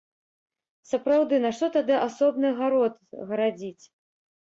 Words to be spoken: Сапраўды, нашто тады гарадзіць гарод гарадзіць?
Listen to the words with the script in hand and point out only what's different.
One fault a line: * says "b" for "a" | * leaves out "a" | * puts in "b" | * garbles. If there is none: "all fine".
* says "асобны" for "гарадзіць"